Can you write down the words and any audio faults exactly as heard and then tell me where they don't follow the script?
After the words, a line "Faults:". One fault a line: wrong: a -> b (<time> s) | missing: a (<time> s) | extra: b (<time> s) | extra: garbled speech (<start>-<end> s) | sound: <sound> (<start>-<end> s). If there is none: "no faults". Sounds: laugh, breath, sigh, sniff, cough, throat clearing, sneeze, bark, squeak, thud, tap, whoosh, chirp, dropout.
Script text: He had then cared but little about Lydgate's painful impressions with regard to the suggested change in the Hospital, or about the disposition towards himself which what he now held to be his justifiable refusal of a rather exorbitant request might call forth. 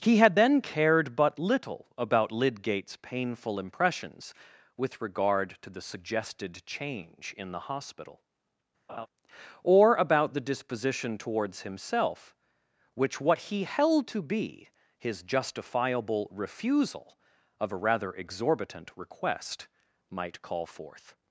He had then cared but little about Lydgate's painful impressions with regard to the suggested change in the Hospital, or about the disposition towards himself which what he held to be his justifiable refusal of a rather exorbitant request might call forth.
Faults:
sound: laugh (8.9-9.1 s)
missing: now (13.6 s)